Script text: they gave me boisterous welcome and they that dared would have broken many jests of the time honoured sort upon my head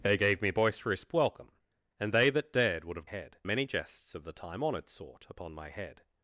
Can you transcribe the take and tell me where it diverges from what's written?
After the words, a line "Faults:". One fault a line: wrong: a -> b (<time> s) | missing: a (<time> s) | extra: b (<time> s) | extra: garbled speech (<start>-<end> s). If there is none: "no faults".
they gave me boisterous welcome and they that dared would have head many jests of the time honoured sort upon my head
Faults:
wrong: broken -> head (3.0 s)